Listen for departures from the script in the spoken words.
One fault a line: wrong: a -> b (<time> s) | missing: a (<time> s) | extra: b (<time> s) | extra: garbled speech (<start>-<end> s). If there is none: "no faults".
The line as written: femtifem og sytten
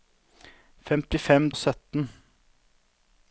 no faults